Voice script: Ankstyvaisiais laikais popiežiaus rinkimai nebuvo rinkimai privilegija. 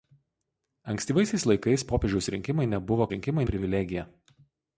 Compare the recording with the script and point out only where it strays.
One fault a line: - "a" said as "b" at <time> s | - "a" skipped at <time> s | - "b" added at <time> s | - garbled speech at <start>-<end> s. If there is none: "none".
none